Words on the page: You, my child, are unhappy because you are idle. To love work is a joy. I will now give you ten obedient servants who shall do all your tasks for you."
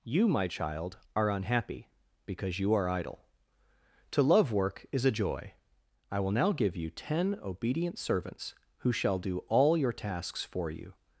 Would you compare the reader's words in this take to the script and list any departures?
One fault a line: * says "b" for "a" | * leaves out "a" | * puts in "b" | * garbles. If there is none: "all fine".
all fine